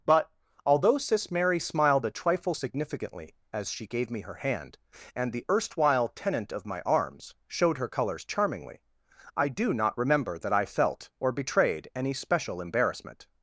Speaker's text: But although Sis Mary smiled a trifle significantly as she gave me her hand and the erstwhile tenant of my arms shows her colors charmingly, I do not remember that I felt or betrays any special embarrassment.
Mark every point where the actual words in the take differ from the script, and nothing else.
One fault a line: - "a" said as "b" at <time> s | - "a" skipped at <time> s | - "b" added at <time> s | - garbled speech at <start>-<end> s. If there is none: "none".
- "shows" said as "showed" at 7.5 s
- "betrays" said as "betrayed" at 11.3 s